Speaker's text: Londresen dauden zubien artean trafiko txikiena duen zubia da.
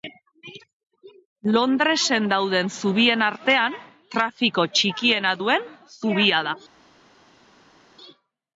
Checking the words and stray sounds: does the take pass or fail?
pass